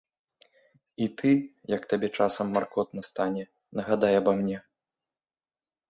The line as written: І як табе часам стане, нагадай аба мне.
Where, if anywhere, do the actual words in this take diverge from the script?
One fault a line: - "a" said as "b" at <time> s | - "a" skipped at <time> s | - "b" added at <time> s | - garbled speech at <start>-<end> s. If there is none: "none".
- "ты" added at 1.2 s
- "маркотна" added at 2.6 s